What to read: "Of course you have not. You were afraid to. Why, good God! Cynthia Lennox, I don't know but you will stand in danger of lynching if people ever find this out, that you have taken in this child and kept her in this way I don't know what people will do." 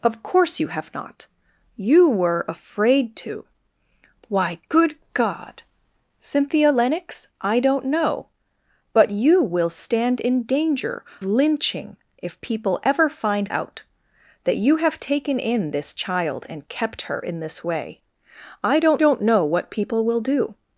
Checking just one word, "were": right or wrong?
right